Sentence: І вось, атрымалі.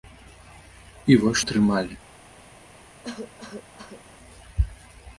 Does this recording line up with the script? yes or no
yes